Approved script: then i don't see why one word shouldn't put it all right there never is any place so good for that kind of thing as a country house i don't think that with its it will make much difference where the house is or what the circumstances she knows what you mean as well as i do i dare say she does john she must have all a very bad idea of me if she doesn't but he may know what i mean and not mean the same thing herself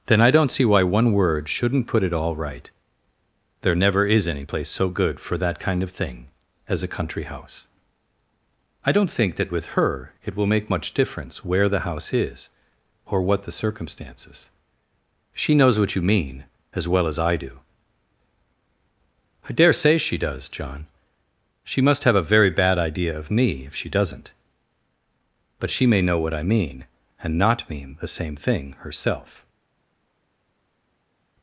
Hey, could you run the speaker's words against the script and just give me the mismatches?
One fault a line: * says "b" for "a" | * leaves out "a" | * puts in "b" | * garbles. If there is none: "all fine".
* says "her" for "its"
* leaves out "all"
* says "she" for "he"